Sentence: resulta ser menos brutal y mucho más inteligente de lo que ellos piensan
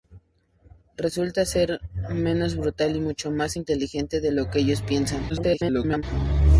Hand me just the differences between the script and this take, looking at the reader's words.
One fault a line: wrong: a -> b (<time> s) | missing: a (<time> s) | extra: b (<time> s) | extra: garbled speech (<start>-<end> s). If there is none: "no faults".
extra: garbled speech (5.3-6.0 s)